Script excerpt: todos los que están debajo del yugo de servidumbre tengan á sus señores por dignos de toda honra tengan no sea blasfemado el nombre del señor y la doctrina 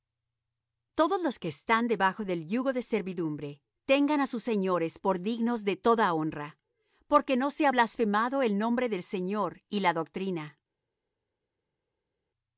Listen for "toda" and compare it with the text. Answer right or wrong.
right